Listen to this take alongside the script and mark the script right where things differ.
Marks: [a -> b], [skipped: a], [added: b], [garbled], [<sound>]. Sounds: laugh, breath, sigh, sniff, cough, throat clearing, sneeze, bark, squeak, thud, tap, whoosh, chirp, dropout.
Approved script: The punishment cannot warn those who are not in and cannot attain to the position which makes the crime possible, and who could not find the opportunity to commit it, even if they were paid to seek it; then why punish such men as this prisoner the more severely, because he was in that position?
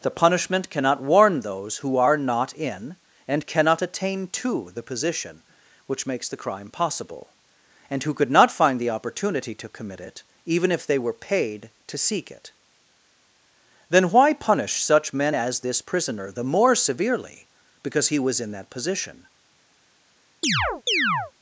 The punishment cannot warn those who are not in and cannot attain to the position which makes the crime possible, and who could not find the opportunity to commit it, even if they were paid to seek it; then why punish such men as this prisoner the more severely, because he was in that position? [chirp]